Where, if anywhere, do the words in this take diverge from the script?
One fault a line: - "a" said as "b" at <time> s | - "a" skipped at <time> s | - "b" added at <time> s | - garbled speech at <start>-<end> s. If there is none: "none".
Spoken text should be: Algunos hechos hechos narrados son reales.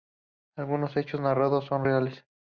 - "hechos" skipped at 1.2 s